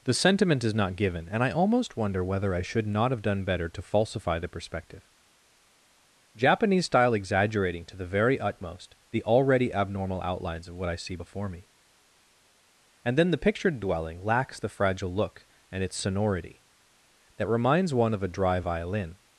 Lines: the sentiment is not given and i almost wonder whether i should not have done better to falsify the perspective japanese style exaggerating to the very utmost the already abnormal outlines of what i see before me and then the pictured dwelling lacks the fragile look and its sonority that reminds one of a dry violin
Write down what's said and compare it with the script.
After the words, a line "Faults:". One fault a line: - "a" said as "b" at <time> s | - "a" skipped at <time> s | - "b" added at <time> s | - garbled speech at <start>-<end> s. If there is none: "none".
the sentiment is not given and i almost wonder whether i should not have done better to falsify the perspective japanese style exaggerating to the very utmost the already abnormal outlines of what i see before me and then the pictured dwelling lacks the fragile look and its sonority that reminds one of a dry violin
Faults:
none